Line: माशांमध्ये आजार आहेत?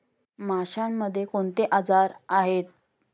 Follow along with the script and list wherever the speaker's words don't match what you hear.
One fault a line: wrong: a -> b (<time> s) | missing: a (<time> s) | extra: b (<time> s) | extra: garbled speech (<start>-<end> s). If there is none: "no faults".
extra: कोणते (1.2 s)